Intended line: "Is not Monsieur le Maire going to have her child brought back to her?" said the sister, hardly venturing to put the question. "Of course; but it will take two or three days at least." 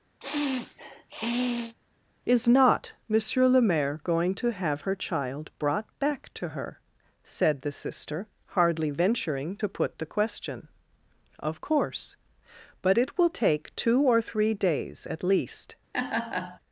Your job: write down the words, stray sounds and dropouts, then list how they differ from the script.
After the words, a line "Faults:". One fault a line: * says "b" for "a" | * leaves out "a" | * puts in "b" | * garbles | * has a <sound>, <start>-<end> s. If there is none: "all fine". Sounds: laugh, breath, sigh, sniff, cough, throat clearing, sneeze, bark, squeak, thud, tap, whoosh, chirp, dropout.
"Is not Monsieur le Maire going to have her child brought back to her?" said the sister, hardly venturing to put the question. "Of course; but it will take two or three days at least."
Faults:
* has a sniff, 0.2-1.7 s
* has a laugh, 15.9-16.6 s